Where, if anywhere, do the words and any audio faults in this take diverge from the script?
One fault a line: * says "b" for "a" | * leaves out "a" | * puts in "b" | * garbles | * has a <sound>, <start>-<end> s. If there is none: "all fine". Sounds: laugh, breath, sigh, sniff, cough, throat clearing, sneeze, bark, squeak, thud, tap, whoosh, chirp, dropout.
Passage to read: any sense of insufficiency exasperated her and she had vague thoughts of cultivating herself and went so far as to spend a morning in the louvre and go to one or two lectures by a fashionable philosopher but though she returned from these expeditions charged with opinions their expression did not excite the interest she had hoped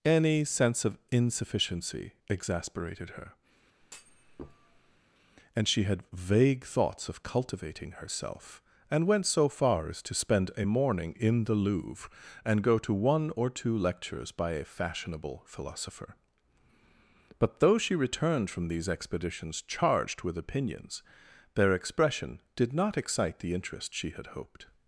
* has a thud, 3.8-5.0 s